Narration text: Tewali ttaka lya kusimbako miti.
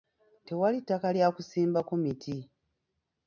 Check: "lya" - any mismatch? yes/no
no